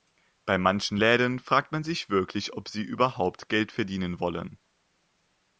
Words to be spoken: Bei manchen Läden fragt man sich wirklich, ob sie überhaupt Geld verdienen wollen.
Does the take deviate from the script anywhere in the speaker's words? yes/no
no